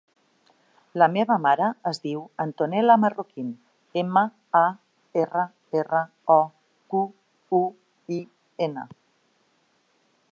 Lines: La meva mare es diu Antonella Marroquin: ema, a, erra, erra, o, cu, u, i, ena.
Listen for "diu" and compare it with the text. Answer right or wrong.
right